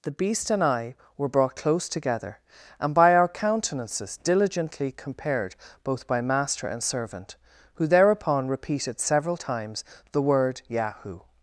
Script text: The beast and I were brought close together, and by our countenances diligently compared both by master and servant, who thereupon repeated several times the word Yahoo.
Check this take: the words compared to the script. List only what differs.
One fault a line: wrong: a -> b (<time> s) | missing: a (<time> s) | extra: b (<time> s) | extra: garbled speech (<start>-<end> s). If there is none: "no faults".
no faults